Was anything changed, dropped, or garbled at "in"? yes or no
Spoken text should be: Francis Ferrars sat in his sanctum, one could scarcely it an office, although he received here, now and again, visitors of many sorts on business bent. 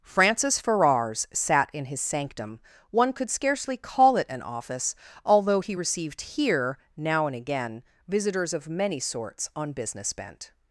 no